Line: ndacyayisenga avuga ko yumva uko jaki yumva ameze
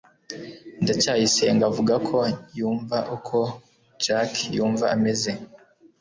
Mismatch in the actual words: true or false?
false